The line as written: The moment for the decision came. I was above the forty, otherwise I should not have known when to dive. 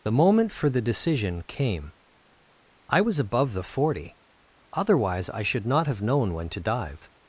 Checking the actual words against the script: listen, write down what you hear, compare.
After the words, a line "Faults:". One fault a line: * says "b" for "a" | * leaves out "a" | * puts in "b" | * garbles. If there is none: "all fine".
The moment for the decision came. I was above the forty, otherwise I should not have known when to dive.
Faults:
all fine